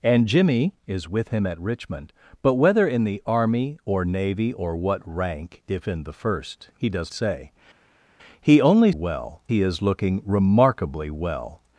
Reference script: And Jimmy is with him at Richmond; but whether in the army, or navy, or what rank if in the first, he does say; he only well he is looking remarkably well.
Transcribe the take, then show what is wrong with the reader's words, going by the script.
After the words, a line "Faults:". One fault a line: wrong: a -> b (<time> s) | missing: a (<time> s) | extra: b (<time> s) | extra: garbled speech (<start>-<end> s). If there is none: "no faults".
And Jimmy is with him at Richmond; but whether in the army, or navy, or what rank if in the first, he does say; he only well he is looking remarkably well.
Faults:
no faults